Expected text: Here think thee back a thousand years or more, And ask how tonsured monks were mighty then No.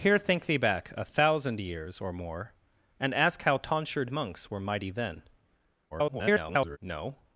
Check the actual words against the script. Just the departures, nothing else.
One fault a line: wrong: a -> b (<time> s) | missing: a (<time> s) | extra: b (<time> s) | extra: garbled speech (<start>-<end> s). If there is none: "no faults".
extra: garbled speech (5.9-6.8 s)